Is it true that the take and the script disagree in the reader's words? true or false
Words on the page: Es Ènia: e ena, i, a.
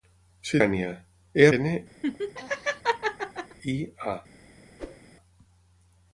false